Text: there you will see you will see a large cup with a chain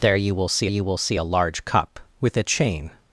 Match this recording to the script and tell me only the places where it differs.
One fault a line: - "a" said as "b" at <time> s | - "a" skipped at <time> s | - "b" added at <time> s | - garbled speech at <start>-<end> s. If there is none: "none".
none